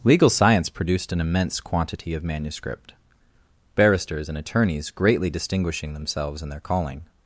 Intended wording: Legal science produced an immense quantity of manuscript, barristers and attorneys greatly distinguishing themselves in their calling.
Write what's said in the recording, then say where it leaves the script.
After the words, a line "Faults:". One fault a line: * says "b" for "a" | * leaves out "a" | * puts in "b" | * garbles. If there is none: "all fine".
Legal science produced an immense quantity of manuscript, barristers and attorneys greatly distinguishing themselves in their calling.
Faults:
all fine